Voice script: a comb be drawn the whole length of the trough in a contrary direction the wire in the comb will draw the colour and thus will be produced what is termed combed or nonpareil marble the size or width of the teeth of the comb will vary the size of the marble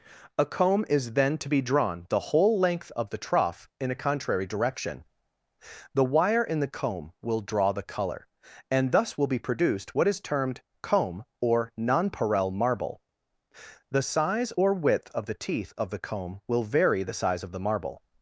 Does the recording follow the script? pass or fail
fail